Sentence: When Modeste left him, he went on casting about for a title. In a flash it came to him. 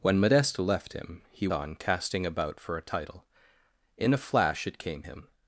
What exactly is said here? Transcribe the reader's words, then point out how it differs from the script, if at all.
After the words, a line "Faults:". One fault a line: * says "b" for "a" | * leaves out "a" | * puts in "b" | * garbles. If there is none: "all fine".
When Modeste left him, he on casting about for a title. In a flash it came him.
Faults:
* leaves out "went"
* leaves out "to"